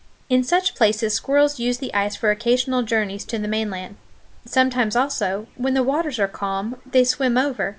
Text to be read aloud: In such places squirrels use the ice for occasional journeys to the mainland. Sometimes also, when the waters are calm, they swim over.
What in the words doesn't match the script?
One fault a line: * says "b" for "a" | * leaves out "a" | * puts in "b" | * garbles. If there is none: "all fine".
all fine